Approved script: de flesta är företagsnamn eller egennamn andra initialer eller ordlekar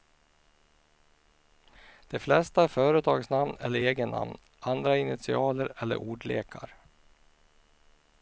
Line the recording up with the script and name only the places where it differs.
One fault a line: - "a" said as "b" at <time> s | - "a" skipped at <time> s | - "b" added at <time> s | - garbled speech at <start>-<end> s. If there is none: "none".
none